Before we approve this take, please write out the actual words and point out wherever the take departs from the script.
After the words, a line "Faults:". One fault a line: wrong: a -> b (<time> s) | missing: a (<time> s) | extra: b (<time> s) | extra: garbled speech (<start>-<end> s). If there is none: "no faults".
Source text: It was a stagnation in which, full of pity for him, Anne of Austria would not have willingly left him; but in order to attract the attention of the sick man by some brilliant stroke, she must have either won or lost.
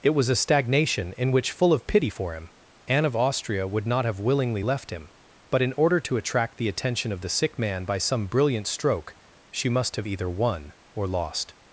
It was a stagnation in which, full of pity for him, Anne of Austria would not have willingly left him; but in order to attract the attention of the sick man by some brilliant stroke, she must have either won or lost.
Faults:
no faults